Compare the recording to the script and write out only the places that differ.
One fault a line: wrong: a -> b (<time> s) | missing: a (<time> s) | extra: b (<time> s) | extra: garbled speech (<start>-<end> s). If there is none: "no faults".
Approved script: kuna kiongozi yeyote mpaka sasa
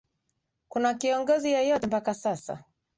no faults